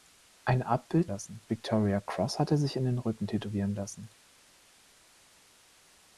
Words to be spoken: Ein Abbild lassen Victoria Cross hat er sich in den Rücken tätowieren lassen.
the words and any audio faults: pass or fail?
pass